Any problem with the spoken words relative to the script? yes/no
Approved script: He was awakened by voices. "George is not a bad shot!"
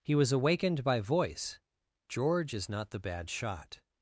yes